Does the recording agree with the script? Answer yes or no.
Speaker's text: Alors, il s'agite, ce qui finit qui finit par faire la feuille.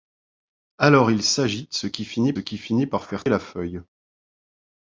yes